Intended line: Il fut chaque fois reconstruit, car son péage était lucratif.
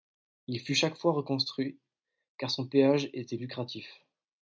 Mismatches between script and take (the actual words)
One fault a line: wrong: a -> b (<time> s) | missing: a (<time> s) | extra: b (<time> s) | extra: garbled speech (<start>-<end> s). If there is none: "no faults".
no faults